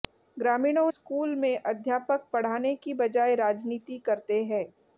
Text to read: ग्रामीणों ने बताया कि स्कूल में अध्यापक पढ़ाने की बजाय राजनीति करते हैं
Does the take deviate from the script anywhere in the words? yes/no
yes